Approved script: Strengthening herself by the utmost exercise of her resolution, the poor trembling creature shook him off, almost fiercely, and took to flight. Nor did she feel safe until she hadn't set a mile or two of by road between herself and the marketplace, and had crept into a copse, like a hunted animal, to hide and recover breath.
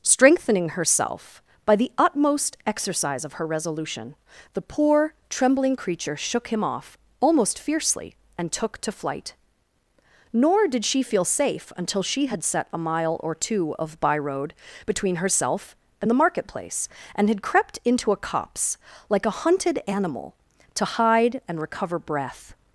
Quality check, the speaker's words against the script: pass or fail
fail